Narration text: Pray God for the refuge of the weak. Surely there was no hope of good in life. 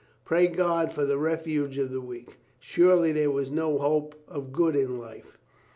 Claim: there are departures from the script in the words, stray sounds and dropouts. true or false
false